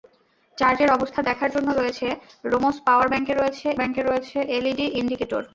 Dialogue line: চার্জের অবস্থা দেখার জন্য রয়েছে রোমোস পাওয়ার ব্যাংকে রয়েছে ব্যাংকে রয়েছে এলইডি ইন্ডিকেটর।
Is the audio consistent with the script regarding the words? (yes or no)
yes